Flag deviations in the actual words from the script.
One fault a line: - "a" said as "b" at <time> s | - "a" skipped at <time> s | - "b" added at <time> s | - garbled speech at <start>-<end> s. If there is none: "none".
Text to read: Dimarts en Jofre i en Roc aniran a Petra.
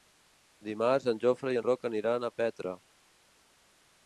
none